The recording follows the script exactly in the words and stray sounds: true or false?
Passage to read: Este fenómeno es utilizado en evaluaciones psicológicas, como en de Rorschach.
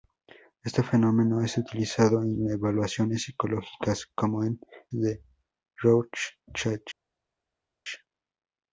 true